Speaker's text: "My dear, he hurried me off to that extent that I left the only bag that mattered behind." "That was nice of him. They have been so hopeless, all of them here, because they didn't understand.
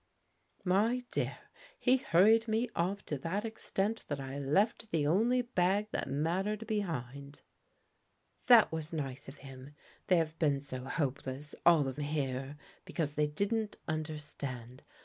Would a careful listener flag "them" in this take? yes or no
yes